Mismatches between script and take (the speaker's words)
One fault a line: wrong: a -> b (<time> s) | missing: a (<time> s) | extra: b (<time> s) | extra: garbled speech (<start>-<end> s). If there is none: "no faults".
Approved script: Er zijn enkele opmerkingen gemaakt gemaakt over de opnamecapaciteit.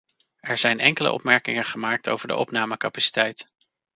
missing: gemaakt (2.1 s)